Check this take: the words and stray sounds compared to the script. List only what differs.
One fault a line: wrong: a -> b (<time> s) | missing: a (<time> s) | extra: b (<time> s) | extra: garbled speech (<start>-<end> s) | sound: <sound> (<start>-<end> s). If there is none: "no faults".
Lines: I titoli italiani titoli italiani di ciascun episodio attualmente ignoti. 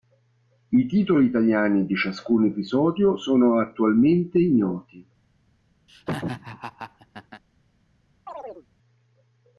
missing: titoli italiani (1.9 s)
extra: sono (3.2 s)
sound: laugh (5.9-7.4 s)
sound: chirp (8.3-8.7 s)